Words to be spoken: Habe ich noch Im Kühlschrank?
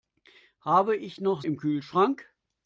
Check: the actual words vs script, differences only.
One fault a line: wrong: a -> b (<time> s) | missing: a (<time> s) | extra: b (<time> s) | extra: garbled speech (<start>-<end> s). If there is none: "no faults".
no faults